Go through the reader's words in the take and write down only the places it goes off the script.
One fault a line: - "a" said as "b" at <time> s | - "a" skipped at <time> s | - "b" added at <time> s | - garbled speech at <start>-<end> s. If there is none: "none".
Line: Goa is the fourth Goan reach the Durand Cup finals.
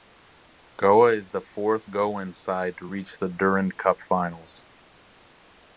- "side to" added at 2.3 s